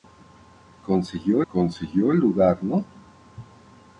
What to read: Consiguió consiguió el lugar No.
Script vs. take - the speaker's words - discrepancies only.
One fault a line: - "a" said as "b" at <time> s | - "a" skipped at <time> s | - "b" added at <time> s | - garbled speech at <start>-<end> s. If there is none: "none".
none